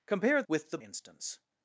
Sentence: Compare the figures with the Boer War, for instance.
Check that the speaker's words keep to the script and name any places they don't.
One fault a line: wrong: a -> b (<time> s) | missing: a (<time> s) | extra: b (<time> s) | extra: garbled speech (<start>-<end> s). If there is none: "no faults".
missing: the figures (0.4 s)
missing: Boer War for (0.8 s)